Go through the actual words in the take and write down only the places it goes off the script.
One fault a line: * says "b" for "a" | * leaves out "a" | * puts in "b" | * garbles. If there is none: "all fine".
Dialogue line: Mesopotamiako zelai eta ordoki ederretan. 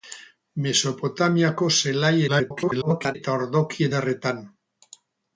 * garbles